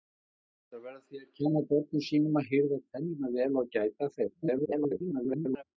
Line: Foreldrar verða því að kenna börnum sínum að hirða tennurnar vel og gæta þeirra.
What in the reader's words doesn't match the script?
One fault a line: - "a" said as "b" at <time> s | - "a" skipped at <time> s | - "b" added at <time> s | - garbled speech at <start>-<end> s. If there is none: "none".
- garbled speech at 4.4-5.6 s